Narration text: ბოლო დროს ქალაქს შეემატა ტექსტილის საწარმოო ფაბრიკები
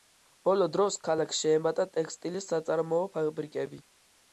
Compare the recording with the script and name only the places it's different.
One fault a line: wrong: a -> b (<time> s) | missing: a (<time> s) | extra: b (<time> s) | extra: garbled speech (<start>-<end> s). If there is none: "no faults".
no faults